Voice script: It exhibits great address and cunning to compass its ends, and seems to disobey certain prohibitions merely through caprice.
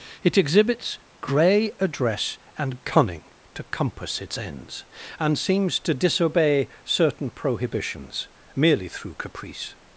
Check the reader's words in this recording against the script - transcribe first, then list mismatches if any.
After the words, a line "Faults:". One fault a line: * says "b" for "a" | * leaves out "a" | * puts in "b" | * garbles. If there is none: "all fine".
It exhibits grey address and cunning to compass its ends, and seems to disobey certain prohibitions merely through caprice.
Faults:
* says "grey" for "great"